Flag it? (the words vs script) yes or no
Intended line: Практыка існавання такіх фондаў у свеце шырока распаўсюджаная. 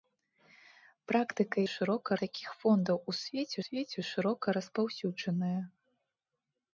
yes